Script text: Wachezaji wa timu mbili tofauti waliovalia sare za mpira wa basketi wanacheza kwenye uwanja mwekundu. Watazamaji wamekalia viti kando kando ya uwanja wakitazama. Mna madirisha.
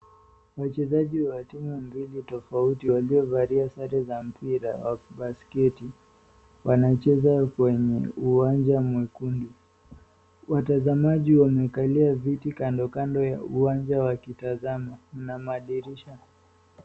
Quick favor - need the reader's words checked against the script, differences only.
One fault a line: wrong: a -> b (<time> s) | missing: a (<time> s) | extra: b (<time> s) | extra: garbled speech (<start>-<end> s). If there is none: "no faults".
no faults